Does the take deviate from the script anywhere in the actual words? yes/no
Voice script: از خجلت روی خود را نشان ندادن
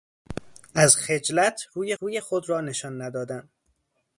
yes